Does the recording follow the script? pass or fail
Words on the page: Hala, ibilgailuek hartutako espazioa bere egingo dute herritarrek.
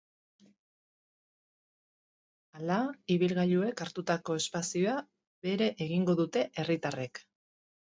pass